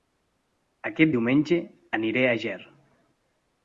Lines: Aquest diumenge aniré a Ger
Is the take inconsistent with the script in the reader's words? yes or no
no